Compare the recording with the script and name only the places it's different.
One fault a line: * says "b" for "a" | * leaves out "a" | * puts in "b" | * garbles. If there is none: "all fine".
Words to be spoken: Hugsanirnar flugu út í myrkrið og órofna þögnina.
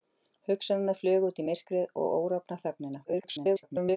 * garbles